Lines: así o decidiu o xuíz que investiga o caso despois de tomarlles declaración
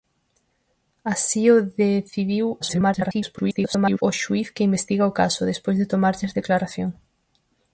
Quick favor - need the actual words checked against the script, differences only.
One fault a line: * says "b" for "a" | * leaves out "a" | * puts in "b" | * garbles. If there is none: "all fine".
* garbles